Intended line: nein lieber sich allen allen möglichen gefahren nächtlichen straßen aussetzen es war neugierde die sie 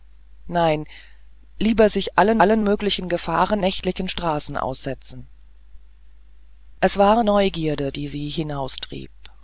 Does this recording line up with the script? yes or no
yes